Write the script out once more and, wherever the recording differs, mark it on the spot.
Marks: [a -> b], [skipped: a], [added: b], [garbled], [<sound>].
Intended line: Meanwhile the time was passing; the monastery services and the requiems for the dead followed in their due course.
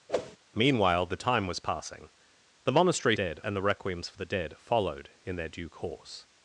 [whoosh] Meanwhile the time was passing; the monastery [services -> dead] and the requiems for the dead followed in their due course.